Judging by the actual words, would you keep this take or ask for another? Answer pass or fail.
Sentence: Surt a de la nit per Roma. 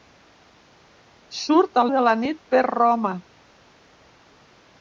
pass